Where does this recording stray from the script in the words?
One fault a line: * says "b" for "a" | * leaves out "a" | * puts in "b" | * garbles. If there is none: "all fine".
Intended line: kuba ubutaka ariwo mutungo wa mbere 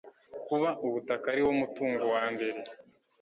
all fine